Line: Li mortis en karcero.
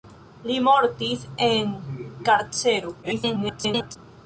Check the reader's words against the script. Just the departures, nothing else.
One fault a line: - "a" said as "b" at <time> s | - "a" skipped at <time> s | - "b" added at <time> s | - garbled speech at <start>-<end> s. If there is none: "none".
- garbled speech at 3.0-4.0 s